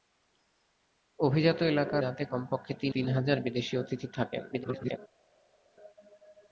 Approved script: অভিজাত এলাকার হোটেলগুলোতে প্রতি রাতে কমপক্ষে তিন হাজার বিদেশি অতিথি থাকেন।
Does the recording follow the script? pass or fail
fail